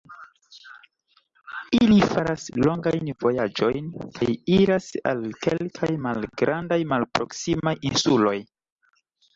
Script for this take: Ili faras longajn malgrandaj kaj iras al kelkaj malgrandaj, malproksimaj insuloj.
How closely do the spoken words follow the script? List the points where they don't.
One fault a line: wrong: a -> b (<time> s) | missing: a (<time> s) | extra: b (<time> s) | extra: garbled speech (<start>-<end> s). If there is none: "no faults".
wrong: malgrandaj -> vojaĝojn (3.3 s)